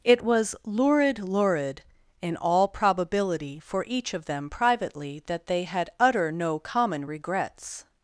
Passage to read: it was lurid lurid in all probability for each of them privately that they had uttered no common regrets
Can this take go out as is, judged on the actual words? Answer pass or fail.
fail